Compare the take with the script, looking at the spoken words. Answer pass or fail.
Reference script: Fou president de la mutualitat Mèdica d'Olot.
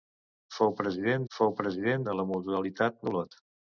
fail